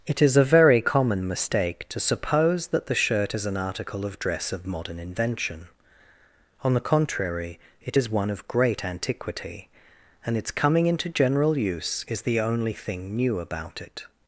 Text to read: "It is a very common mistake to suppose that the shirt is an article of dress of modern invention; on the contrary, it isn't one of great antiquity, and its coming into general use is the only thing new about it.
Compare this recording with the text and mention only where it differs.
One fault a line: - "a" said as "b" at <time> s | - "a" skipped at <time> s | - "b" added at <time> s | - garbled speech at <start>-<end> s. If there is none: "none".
- "isn't" said as "is" at 8.0 s